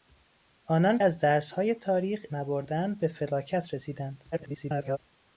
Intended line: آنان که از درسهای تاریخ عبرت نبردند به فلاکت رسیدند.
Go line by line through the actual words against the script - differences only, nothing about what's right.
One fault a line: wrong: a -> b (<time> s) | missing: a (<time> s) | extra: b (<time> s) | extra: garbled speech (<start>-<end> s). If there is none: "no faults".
missing: که (1.0 s)
missing: عبرت (2.2 s)
extra: garbled speech (4.3-5.0 s)